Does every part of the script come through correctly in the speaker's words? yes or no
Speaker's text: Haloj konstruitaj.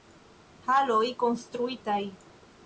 yes